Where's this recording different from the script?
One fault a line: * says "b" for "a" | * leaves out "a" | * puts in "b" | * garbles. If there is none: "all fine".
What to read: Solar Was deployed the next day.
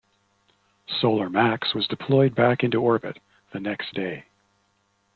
* puts in "Max"
* puts in "back into orbit"